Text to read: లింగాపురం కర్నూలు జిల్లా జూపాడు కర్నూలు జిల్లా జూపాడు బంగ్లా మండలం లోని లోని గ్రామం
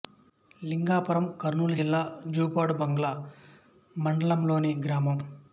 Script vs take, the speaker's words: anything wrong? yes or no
yes